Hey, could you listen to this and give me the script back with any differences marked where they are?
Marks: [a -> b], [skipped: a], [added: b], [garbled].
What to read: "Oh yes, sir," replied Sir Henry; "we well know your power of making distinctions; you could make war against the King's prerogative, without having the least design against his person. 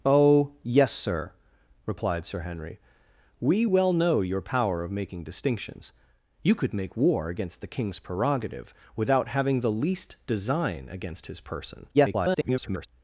"Oh yes, sir," replied Sir Henry; "we well know your power of making distinctions; you could make war against the King's prerogative, without having the least design against his person. [garbled]